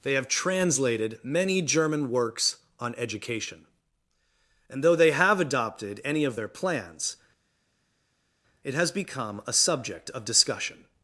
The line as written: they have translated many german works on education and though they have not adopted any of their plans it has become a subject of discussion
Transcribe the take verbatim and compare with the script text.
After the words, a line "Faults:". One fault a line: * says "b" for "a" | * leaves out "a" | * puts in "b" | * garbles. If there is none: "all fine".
they have translated many german works on education and though they have adopted any of their plans it has become a subject of discussion
Faults:
* leaves out "not"